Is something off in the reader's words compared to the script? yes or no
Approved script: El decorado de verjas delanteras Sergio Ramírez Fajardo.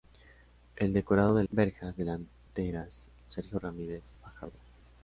no